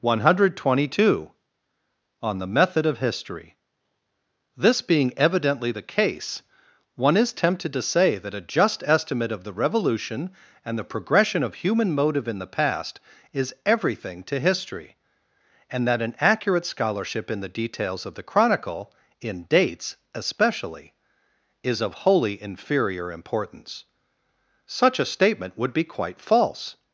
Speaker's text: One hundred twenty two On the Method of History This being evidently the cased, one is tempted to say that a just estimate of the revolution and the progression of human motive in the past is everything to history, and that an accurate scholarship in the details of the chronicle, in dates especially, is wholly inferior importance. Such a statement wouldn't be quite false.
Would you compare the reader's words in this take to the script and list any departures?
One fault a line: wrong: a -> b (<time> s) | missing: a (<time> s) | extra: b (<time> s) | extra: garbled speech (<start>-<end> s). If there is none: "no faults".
wrong: cased -> case (5.8 s)
extra: of (21.8 s)
wrong: wouldn't -> would (25.6 s)